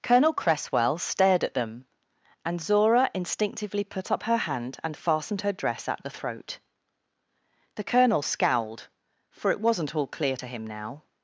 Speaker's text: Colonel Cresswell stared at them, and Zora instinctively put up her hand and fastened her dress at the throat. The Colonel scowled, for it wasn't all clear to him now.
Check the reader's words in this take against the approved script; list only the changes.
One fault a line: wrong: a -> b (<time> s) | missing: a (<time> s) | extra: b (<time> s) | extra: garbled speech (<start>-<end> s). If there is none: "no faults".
no faults